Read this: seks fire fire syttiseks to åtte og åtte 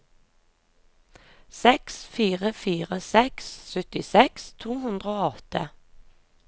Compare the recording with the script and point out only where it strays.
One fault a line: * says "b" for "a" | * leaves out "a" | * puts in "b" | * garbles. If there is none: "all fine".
* puts in "seks"
* says "hundre" for "åtte"